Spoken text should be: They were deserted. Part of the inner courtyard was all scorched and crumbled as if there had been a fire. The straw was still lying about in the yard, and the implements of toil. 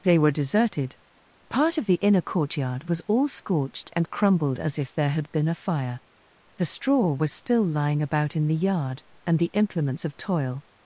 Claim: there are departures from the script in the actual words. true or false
false